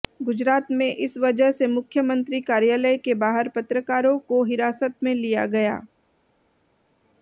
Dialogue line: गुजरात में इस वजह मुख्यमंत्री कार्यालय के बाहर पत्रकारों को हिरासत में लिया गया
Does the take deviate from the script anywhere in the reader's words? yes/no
yes